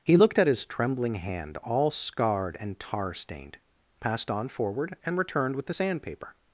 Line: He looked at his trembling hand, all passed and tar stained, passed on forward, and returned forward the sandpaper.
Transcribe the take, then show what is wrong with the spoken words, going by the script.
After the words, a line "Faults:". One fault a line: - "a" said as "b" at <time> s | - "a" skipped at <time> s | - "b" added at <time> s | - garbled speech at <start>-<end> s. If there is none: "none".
He looked at his trembling hand, all scarred and tar stained, passed on forward, and returned with the sandpaper.
Faults:
- "passed" said as "scarred" at 1.9 s
- "forward" said as "with" at 5.5 s